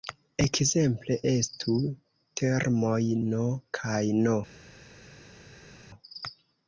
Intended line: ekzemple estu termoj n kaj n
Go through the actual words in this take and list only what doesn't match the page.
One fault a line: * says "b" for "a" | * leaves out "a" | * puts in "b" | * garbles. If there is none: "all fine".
all fine